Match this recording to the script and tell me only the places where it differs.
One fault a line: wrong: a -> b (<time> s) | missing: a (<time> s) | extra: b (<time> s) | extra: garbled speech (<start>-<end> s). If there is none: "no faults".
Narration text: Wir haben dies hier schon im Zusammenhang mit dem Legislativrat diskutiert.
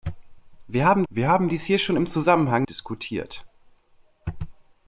extra: wir haben (1.1 s)
missing: mit dem Legislativrat (2.7 s)